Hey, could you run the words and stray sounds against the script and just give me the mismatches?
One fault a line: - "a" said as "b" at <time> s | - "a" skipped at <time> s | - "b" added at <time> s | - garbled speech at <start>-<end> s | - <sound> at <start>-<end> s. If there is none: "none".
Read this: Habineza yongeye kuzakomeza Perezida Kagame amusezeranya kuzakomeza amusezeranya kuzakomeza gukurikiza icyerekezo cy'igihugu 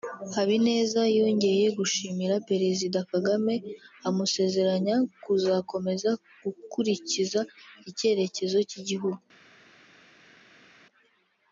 - "kuzakomeza" said as "gushimira" at 1.8 s
- "amusezeranya kuzakomeza" skipped at 6.1 s